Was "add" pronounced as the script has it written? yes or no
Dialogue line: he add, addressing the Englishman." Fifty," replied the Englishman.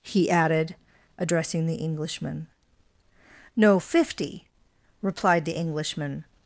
no